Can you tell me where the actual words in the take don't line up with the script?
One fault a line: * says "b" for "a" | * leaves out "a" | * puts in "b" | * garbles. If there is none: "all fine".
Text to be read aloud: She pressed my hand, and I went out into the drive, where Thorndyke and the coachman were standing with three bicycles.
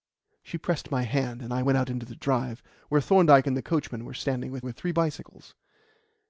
* puts in "with"